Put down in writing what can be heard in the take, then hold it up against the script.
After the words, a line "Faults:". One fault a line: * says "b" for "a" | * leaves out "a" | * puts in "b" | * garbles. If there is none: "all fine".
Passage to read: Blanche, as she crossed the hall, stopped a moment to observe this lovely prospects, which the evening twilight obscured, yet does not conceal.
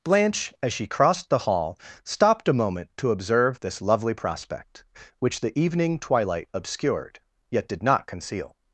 Blanche, as she crossed the hall, stopped a moment to observe this lovely prospect, which the evening twilight obscured, yet did not conceal.
Faults:
* says "prospect" for "prospects"
* says "did" for "does"